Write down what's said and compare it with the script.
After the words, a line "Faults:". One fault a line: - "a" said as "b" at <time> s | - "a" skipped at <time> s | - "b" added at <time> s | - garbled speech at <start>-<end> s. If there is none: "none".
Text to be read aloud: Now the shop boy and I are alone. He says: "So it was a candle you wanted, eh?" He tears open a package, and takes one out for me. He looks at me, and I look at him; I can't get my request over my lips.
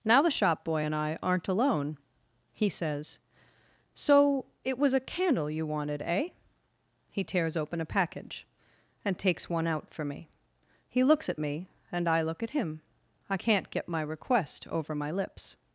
Now the shop boy and I aren't alone. He says: "So it was a candle you wanted, eh?" He tears open a package, and takes one out for me. He looks at me, and I look at him; I can't get my request over my lips.
Faults:
- "are" said as "aren't" at 1.2 s